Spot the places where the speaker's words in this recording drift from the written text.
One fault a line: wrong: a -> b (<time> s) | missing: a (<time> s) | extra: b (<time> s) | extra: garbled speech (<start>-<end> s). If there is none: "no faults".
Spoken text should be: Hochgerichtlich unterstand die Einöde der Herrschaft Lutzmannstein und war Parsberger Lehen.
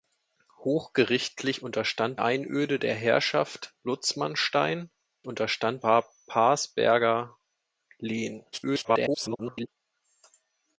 missing: die (2.2 s)
wrong: und -> unterstand (5.2 s)
extra: garbled speech (8.5-9.7 s)